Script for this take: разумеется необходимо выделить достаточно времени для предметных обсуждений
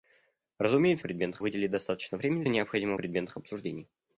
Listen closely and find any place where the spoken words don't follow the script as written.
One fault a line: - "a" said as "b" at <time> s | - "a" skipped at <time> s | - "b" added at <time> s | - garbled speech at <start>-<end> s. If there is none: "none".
- "необходимо" said as "предметных" at 1.0 s
- "для" said as "необходимо" at 2.5 s